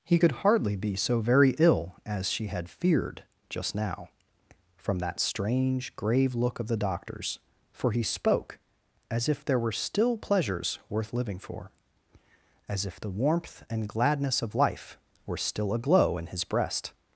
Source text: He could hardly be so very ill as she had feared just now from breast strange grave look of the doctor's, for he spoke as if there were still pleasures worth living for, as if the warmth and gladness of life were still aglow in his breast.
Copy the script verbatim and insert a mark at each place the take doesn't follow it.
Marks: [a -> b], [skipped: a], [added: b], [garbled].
He could hardly be so very ill as she had feared just now from [breast -> that] strange grave look of the doctor's, for he spoke as if there were still pleasures worth living for, as if the warmth and gladness of life were still aglow in his breast.